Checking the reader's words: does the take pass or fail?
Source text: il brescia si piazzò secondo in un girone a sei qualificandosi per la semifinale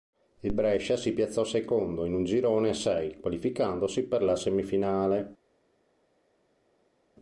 pass